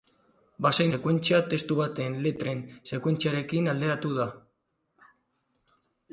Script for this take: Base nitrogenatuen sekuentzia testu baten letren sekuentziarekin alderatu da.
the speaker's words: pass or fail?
fail